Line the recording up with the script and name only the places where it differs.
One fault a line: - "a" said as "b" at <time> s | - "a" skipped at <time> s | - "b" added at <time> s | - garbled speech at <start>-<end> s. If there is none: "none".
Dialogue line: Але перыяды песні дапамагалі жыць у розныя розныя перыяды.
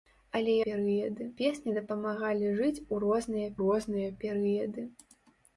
none